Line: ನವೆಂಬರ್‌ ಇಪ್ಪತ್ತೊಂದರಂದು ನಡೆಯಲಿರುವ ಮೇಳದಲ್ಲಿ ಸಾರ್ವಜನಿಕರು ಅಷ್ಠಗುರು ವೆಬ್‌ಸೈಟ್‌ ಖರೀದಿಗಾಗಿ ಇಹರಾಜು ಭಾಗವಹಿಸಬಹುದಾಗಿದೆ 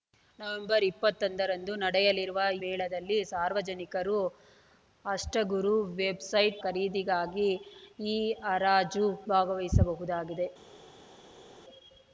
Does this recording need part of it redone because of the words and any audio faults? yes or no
no